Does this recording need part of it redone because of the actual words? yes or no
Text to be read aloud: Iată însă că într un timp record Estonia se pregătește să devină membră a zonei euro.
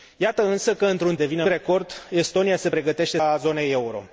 yes